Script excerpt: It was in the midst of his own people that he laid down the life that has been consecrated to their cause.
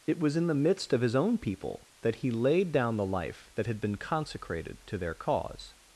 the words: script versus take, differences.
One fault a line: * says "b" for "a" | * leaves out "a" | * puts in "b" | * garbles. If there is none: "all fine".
* says "had" for "has"